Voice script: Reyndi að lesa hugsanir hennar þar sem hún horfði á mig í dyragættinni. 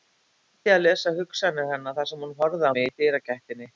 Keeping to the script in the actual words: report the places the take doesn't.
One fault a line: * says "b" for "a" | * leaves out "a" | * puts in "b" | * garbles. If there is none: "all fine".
all fine